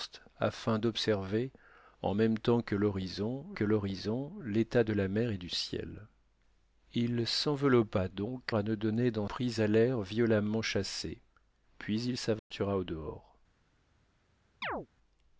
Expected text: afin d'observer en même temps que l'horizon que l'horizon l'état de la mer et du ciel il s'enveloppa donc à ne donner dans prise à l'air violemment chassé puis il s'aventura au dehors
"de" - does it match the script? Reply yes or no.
yes